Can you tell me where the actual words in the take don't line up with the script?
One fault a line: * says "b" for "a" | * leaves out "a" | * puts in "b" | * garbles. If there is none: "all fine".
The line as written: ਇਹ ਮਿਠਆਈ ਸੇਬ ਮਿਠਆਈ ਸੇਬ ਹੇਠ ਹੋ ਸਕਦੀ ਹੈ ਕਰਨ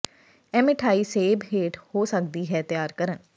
* leaves out "ਮਿਠਆਈ ਸੇਬ"
* puts in "ਤਿਆਰ"